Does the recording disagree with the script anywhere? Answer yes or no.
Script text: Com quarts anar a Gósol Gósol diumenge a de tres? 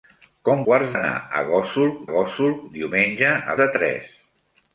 no